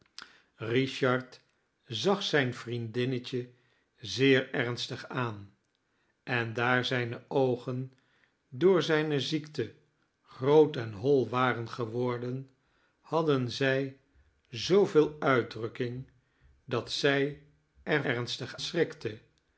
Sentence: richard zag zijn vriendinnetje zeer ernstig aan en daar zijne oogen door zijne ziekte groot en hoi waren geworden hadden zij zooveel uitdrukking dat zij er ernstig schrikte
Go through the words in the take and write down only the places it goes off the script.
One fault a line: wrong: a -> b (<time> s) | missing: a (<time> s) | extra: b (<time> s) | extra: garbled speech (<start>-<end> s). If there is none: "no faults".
no faults